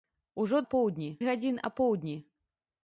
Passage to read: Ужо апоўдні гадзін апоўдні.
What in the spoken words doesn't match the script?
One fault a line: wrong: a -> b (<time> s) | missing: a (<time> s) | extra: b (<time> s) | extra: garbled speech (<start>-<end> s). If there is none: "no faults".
no faults